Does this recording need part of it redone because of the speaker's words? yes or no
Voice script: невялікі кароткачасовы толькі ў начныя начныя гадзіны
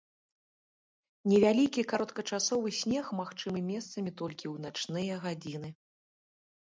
yes